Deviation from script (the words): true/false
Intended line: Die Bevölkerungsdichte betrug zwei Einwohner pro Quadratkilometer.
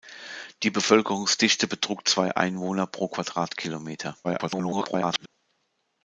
true